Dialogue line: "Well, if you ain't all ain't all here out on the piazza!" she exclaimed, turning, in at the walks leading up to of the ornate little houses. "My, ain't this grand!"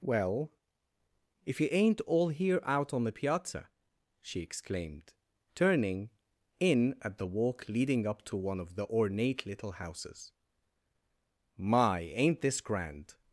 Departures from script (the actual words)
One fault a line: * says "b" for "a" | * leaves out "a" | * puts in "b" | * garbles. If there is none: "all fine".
* leaves out "ain't all"
* says "walk" for "walks"
* puts in "one"